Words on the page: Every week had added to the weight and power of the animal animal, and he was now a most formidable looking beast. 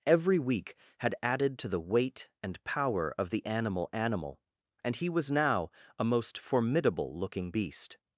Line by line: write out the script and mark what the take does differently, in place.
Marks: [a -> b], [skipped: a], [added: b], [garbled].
Every week had added to the weight and power of the animal animal, and he was now a most formidable looking beast.